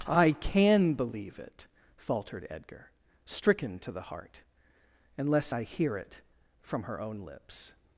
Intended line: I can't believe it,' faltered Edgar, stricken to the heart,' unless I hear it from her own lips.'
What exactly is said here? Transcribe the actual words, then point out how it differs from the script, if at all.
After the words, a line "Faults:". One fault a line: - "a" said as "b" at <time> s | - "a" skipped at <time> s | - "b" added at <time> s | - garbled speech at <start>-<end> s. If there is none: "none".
I can believe it,' faltered Edgar, stricken to the heart,' unless I hear it from her own lips.'
Faults:
- "can't" said as "can" at 0.3 s